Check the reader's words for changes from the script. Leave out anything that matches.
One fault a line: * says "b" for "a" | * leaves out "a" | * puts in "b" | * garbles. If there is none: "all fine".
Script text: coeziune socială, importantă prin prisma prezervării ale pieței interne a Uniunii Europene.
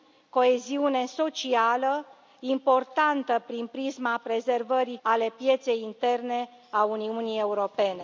all fine